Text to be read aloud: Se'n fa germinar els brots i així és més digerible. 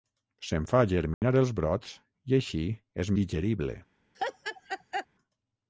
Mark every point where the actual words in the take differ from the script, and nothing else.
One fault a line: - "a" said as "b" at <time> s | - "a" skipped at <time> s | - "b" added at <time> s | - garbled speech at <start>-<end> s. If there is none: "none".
- "més" skipped at 3.1 s